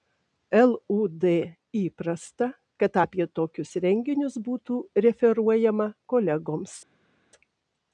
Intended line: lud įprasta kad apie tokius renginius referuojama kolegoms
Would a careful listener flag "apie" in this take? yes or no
no